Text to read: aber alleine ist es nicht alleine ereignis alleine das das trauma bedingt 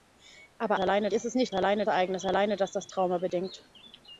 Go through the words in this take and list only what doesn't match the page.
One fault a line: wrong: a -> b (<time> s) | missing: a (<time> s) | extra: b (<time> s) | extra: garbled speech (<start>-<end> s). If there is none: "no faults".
no faults